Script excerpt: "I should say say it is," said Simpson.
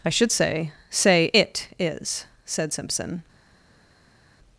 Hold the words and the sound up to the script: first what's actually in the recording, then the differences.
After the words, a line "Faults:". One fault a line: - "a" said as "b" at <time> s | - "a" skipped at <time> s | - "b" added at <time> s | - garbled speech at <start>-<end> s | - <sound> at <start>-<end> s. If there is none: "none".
"I should say say it is," said Simpson.
Faults:
none